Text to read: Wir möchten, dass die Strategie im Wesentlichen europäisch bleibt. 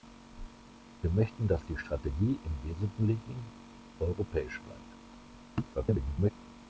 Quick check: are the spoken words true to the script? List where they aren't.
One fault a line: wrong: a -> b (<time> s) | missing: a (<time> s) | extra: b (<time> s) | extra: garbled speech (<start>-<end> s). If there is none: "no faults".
extra: garbled speech (5.7-6.3 s)